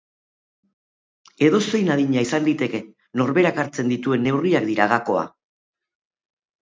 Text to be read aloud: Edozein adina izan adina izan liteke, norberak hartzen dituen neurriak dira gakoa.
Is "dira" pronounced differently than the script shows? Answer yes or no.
no